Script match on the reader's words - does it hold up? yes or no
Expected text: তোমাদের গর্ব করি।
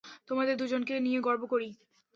no